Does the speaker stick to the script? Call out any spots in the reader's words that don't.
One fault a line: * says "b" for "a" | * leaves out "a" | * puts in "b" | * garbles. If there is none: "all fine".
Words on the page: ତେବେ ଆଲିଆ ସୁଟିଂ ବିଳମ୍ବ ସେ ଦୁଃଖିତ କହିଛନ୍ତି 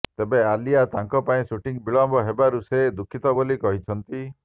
* puts in "ତାଙ୍କ ପାଇଁ"
* puts in "ହେବାରୁ"
* puts in "ବୋଲି"